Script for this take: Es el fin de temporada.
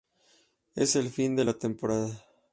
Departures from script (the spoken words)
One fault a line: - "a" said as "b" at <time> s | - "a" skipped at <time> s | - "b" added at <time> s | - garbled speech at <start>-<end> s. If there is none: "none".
- "la" added at 1.4 s